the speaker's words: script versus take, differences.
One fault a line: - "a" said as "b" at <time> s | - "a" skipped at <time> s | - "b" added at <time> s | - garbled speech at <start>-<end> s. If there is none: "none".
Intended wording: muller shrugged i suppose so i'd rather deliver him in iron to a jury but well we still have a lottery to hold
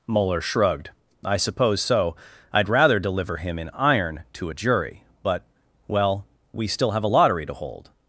none